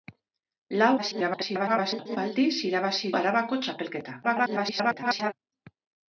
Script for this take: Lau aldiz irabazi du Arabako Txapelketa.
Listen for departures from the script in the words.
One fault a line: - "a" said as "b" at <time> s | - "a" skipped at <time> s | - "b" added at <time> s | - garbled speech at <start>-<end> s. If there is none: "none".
- garbled speech at 1.0-2.2 s
- "du" skipped at 3.1 s
- garbled speech at 4.2-5.3 s